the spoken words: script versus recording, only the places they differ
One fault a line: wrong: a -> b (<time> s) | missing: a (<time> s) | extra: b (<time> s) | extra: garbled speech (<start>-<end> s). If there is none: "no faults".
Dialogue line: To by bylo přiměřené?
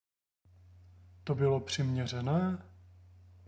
missing: by (1.4 s)